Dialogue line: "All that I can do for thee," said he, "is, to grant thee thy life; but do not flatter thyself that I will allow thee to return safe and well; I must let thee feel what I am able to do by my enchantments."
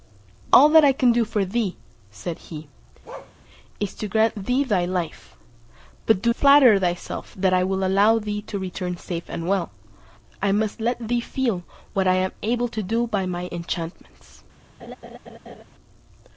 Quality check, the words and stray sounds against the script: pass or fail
fail